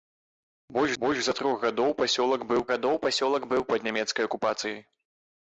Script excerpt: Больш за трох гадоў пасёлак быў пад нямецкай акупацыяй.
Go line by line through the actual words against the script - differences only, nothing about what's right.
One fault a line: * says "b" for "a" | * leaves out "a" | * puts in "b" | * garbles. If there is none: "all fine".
* puts in "больш"
* puts in "гадоў пасёлак быў"